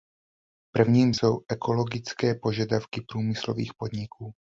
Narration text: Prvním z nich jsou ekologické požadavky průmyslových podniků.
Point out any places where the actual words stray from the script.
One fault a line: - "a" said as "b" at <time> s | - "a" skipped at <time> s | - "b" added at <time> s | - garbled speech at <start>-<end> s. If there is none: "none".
- "nich" skipped at 1.2 s